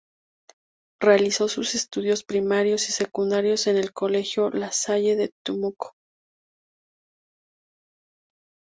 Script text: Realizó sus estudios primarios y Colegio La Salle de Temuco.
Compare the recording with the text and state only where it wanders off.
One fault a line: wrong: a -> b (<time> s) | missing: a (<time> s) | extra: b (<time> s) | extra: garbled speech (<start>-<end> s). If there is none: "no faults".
extra: secundarios en el (2.9 s)